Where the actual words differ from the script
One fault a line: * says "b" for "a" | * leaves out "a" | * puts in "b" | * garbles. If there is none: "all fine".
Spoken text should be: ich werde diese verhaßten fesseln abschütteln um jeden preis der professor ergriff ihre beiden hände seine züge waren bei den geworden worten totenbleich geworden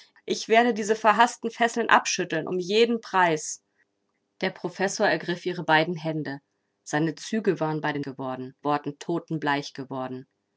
all fine